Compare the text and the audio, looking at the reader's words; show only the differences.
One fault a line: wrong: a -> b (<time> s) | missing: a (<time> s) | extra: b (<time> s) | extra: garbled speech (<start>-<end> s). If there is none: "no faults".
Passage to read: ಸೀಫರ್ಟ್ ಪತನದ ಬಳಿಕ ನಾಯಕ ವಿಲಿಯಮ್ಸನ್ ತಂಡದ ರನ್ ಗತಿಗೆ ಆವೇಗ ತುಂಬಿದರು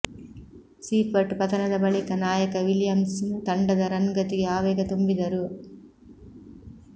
no faults